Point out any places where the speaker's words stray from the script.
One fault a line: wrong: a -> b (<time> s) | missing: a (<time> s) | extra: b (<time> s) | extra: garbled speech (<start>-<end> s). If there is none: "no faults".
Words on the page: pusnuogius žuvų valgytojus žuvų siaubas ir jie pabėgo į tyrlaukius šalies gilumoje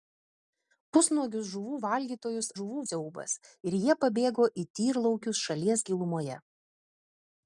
no faults